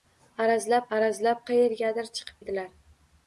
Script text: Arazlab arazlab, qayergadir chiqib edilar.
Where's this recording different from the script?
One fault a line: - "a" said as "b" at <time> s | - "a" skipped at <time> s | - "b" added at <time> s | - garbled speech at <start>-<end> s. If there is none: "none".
none